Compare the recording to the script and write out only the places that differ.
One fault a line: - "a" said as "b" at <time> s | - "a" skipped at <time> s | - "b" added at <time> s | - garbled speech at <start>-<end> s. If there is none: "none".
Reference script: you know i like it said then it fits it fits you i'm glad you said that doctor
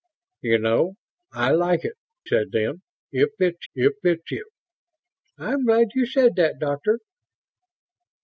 none